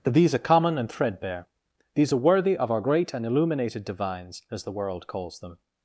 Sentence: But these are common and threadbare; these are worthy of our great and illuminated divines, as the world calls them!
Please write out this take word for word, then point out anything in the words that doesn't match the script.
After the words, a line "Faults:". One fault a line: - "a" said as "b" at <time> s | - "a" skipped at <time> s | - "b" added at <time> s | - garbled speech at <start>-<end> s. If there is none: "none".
That these are common and threadbare; these are worthy of our great and illuminated divines, as the world calls them!
Faults:
- "But" said as "That" at 0.0 s